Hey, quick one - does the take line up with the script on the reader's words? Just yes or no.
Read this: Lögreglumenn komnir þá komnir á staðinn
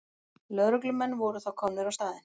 no